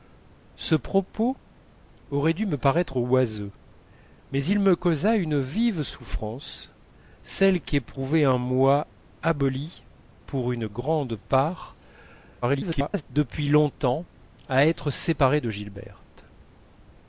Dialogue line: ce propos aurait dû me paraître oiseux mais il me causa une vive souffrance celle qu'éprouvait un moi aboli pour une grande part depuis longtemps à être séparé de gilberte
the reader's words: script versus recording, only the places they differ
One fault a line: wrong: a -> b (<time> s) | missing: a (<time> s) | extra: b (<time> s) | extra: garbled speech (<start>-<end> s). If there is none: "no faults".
extra: garbled speech (12.4-13.0 s)